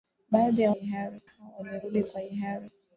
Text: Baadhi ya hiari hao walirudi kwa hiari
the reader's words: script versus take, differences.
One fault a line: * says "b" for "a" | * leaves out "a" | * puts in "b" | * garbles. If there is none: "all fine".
all fine